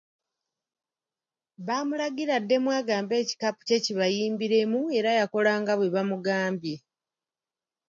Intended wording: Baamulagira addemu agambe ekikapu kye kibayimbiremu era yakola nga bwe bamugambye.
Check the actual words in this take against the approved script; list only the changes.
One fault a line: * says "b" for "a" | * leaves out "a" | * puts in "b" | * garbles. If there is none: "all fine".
all fine